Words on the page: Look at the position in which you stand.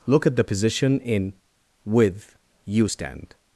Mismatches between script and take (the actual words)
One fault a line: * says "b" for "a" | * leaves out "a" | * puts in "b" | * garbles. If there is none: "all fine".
* says "with" for "which"